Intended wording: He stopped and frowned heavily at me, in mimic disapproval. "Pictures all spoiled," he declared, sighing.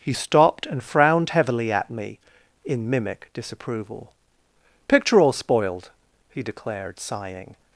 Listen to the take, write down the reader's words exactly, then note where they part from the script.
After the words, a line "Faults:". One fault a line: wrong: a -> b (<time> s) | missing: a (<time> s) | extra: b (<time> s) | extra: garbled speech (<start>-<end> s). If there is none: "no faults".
He stopped and frowned heavily at me, in mimic disapproval. "Picture all spoiled," he declared, sighing.
Faults:
wrong: Pictures -> Picture (4.9 s)